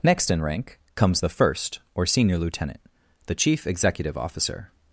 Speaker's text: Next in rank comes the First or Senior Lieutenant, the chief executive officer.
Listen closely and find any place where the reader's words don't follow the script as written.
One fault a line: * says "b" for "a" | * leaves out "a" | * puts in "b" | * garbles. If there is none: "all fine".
all fine